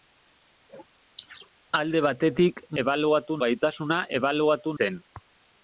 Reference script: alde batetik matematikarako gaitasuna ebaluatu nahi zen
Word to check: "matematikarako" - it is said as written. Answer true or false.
false